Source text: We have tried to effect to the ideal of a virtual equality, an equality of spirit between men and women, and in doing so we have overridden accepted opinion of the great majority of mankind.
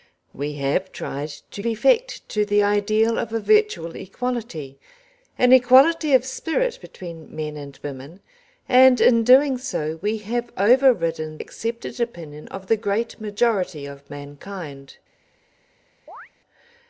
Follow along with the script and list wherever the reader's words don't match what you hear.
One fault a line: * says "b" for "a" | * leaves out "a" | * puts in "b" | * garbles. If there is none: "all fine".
all fine